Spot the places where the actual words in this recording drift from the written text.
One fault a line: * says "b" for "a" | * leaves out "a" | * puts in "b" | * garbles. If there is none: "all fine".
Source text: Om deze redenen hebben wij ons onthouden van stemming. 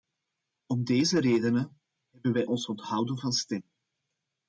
all fine